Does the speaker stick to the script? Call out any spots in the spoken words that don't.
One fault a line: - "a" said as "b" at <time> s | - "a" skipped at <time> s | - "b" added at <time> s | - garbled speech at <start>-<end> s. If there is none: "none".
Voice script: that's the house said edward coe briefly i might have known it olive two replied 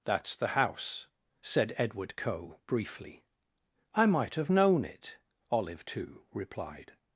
none